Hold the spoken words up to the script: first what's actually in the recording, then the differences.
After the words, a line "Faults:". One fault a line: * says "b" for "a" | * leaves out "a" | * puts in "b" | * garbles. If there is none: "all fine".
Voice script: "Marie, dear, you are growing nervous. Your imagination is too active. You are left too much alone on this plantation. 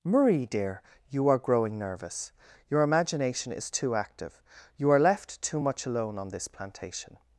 "Marie, dear, you are growing nervous. Your imagination is too active. You are left too much alone on this plantation.
Faults:
all fine